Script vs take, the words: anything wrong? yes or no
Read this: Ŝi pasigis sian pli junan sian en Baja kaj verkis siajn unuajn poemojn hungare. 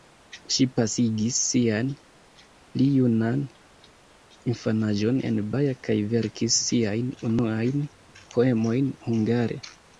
yes